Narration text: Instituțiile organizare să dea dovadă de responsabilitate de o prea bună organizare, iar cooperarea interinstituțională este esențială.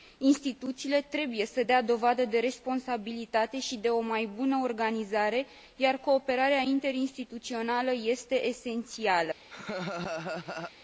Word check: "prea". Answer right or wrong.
wrong